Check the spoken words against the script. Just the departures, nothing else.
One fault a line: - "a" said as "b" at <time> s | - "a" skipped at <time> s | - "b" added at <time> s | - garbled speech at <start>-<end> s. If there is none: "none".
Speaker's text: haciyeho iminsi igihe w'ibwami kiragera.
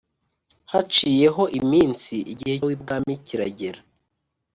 none